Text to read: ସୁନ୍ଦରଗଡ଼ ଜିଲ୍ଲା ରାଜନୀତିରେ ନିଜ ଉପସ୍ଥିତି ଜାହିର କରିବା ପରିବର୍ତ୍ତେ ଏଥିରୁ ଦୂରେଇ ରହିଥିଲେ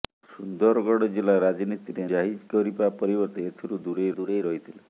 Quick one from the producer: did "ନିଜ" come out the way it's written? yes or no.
no